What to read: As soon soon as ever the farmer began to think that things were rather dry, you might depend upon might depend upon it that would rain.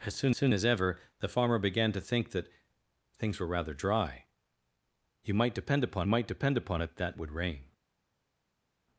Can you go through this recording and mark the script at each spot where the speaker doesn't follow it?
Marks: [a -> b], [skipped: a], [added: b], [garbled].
As soon soon as ever the farmer began to think that things were rather dry, you might depend upon might depend upon it that would rain.